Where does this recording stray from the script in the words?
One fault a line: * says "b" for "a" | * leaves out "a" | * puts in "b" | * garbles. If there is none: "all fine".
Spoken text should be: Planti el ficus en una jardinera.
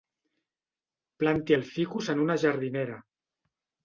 all fine